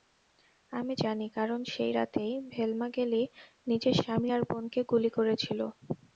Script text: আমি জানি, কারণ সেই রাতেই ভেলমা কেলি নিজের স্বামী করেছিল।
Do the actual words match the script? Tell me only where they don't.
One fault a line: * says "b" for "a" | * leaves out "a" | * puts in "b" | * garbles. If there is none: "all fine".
* puts in "আর বোনকে গুলি"